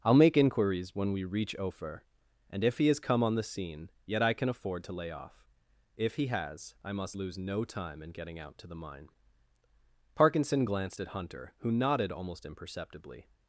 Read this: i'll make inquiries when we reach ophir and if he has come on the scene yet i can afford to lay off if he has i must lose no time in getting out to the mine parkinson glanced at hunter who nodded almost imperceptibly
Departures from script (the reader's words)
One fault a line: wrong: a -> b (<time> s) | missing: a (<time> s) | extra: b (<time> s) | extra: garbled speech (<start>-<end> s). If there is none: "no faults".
no faults